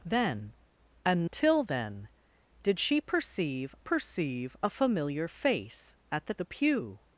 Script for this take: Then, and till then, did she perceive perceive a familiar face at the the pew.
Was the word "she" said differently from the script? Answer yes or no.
no